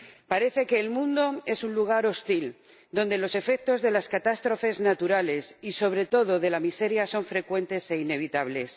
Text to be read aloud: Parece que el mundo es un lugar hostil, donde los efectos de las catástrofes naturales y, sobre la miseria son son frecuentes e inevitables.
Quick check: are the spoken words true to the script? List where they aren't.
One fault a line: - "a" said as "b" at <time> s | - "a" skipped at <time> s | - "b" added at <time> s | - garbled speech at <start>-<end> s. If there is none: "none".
- "todo de" added at 6.1 s
- "son" skipped at 7.2 s